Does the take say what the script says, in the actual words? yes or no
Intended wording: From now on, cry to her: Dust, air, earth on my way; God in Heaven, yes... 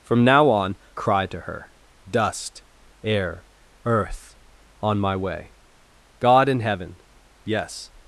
yes